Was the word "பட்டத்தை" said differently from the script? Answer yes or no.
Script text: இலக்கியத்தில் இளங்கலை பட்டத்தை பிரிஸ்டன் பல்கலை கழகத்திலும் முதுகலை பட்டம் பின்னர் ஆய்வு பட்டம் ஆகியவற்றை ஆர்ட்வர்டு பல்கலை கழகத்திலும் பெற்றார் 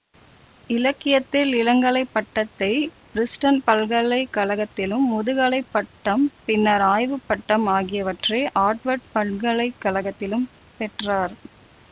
no